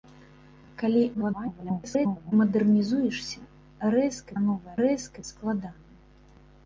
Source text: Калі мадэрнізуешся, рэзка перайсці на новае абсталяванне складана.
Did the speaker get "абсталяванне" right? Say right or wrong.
wrong